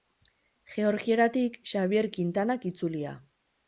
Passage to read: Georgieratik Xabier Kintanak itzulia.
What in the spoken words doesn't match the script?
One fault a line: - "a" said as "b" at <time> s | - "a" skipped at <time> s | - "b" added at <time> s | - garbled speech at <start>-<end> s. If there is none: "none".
none